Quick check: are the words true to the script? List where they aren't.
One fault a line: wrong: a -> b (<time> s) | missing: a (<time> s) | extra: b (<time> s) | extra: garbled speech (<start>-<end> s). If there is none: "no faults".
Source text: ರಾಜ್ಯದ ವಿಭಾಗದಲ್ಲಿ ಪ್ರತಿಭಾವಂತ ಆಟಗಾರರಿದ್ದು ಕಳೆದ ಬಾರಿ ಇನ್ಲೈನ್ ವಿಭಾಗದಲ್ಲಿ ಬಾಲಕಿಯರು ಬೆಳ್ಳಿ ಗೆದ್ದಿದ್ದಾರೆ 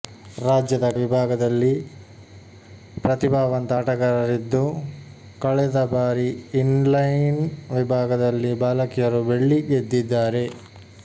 no faults